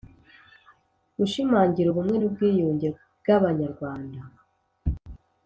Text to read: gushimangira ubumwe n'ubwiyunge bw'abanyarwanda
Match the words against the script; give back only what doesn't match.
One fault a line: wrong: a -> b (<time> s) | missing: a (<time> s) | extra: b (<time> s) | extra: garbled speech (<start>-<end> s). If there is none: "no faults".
no faults